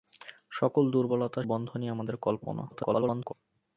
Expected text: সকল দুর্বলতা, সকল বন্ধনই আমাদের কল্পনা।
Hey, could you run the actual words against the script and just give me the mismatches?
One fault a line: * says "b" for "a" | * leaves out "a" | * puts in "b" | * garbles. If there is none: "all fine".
* leaves out "সকল"
* garbles